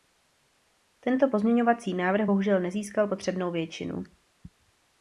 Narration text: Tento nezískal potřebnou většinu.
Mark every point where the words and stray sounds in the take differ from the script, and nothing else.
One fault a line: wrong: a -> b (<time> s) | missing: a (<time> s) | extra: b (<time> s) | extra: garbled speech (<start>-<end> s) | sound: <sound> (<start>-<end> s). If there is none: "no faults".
extra: pozměňovací návrh bohužel (1.3 s)